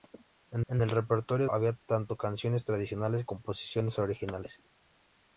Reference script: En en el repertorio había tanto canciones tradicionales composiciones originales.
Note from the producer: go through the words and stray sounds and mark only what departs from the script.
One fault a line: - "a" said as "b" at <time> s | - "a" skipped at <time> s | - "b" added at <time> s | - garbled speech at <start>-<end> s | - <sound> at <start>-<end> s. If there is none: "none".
none